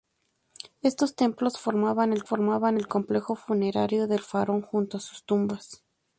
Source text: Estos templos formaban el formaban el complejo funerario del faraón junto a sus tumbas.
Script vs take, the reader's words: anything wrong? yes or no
no